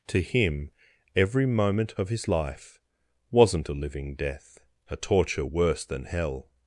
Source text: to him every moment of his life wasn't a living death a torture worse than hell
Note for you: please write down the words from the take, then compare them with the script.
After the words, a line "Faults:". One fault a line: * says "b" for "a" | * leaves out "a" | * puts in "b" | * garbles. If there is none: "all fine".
to him every moment of his life wasn't a living death a torture worse than hell
Faults:
all fine